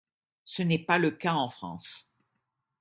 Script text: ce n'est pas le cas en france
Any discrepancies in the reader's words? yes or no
no